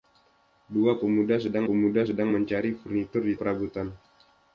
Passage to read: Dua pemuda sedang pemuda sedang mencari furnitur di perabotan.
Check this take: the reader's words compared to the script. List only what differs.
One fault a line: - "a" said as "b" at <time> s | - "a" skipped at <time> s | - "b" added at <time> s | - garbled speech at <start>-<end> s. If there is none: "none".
none